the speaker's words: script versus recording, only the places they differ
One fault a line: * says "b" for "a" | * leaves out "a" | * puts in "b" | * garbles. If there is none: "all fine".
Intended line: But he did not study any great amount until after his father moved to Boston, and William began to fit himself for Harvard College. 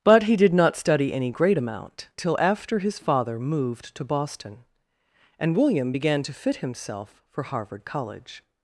* says "till" for "until"